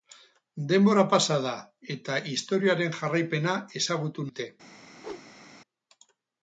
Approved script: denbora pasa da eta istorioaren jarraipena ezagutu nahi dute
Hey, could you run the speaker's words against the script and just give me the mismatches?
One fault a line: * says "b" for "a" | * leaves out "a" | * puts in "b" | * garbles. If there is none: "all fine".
* leaves out "nahi"